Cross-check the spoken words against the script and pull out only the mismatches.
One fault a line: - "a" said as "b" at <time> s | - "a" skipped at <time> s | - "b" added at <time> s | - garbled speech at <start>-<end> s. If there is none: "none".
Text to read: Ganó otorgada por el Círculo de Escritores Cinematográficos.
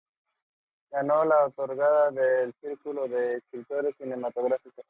- "la" added at 1.2 s